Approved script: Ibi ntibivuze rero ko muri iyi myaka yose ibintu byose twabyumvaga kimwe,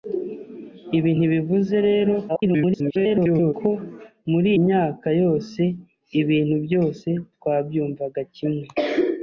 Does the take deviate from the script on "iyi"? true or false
true